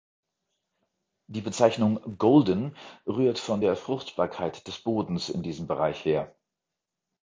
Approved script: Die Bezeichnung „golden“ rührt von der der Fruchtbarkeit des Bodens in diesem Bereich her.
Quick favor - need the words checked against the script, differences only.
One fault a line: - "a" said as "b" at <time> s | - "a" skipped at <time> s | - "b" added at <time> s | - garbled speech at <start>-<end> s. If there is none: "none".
- "der" skipped at 3.8 s